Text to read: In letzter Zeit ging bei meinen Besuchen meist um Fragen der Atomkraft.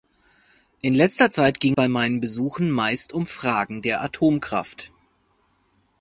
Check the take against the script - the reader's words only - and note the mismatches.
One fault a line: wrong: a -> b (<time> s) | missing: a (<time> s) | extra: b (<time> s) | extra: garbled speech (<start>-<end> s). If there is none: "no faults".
no faults